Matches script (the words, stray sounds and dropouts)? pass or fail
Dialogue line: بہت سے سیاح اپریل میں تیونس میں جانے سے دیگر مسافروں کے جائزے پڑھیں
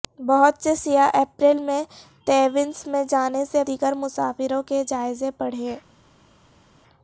pass